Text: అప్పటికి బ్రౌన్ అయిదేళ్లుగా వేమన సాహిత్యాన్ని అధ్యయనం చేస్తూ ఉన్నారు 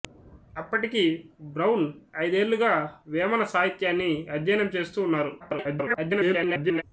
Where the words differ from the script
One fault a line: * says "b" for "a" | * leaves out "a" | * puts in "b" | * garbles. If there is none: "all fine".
* garbles